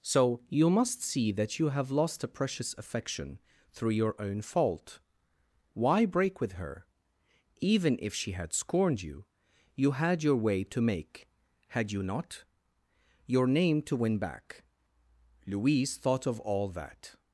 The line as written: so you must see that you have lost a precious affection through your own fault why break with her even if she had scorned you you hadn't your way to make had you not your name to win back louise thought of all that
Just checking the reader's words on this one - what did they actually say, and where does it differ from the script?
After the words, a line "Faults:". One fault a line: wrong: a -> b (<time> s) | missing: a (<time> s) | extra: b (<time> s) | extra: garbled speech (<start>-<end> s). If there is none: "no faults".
so you must see that you have lost a precious affection through your own fault why break with her even if she had scorned you you had your way to make had you not your name to win back louise thought of all that
Faults:
wrong: hadn't -> had (9.9 s)